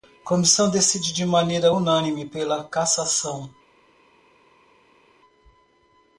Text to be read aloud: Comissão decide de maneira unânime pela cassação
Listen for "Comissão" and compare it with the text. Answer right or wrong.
right